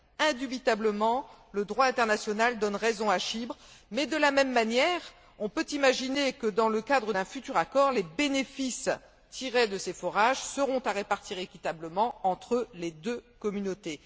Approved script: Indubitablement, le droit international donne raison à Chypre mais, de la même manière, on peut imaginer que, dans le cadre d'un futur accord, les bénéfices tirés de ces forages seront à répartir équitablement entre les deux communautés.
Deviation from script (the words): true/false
false